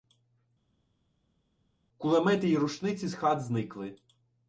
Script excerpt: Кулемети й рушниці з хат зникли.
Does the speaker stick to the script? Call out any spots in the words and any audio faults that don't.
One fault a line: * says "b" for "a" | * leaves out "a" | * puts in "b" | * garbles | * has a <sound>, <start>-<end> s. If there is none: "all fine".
all fine